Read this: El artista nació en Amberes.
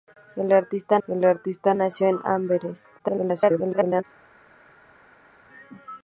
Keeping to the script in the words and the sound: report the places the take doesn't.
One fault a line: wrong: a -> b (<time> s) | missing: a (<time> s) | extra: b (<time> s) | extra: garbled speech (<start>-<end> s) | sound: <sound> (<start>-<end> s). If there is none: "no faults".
extra: el artista (1.1 s)
extra: garbled speech (3.0-4.0 s)